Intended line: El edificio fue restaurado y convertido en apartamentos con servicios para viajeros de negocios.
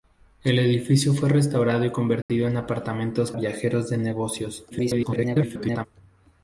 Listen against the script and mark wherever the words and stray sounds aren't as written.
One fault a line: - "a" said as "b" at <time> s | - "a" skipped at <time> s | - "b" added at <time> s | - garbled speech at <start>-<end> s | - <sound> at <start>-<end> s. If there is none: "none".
- dropout at 2.2-2.3 s
- "con servicios para" skipped at 3.3 s
- garbled speech at 4.7-5.9 s